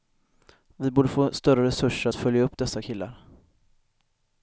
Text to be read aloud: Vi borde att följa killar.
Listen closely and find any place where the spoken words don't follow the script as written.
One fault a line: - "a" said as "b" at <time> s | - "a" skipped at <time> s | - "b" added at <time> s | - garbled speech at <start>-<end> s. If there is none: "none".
- "få större resurser" added at 1.1 s
- "upp dessa" added at 2.4 s